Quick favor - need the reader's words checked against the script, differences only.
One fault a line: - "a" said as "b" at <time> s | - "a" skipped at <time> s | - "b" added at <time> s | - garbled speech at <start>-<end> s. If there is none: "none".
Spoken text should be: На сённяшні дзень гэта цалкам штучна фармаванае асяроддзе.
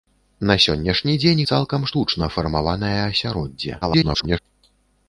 - "гэта" skipped at 1.4 s
- garbled speech at 3.8-4.4 s